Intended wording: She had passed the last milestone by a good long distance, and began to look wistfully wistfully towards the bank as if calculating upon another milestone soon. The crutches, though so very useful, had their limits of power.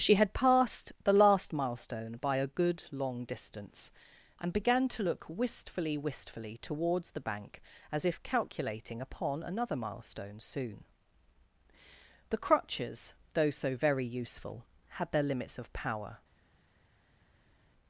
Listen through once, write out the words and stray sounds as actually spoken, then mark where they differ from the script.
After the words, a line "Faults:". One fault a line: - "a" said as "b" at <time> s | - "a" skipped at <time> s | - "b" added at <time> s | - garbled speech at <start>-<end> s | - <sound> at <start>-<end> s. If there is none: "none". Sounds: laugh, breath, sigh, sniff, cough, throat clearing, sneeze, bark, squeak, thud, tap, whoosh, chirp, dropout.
She had passed the last milestone by a good long distance, and began to look wistfully wistfully towards the bank as if calculating upon another milestone soon. The crutches, though so very useful, had their limits of power.
Faults:
none